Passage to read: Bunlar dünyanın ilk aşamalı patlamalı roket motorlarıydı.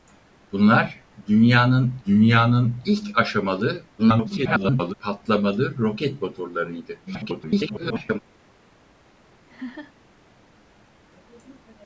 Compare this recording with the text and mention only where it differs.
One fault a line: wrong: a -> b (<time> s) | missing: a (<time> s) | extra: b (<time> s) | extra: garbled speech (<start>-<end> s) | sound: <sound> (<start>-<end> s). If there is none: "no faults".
extra: dünyanın (2.1 s)
extra: garbled speech (4.0-4.9 s)
extra: garbled speech (7.0-8.2 s)
sound: laugh (9.5-9.9 s)